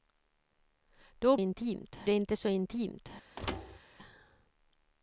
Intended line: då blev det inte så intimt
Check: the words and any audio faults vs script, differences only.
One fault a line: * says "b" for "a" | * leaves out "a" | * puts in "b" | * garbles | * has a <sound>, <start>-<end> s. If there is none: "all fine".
* says "intimt" for "blev"
* has a thud, 3.4-3.8 s